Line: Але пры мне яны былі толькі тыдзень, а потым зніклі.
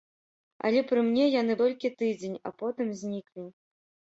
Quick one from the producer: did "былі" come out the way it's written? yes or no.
no